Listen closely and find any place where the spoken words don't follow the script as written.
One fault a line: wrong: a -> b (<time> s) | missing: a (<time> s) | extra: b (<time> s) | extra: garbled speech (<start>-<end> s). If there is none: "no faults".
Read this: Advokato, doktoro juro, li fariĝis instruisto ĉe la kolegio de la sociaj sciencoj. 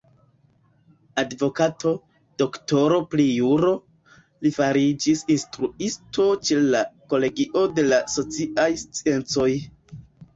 extra: pri (3.1 s)